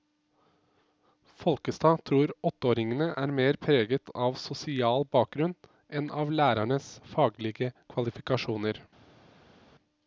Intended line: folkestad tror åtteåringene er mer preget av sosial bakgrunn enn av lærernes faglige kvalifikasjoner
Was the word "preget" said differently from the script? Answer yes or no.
no